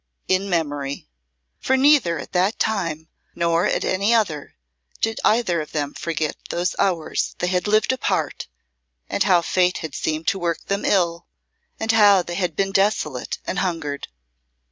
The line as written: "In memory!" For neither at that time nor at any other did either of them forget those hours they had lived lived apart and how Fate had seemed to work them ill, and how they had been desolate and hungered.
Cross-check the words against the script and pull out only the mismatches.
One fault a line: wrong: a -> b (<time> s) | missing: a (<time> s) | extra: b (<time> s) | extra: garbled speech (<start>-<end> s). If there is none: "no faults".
missing: lived (7.9 s)